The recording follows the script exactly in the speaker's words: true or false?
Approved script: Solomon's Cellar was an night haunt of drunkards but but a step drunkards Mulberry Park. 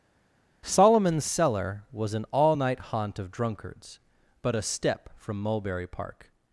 false